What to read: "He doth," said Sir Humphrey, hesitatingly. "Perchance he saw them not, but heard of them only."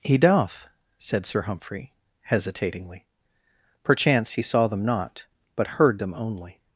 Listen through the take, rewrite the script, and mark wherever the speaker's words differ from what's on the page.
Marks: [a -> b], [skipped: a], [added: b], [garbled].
"He doth," said Sir Humphrey, hesitatingly. "Perchance he saw them not, but heard [skipped: of] them only."